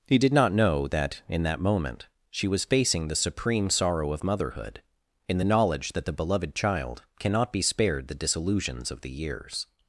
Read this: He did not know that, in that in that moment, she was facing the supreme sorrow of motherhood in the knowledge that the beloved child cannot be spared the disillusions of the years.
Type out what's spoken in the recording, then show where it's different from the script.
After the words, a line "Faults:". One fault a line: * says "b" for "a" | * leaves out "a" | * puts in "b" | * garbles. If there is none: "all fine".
He did not know that, in that moment, she was facing the supreme sorrow of motherhood in the knowledge that the beloved child cannot be spared the disillusions of the years.
Faults:
* leaves out "in that"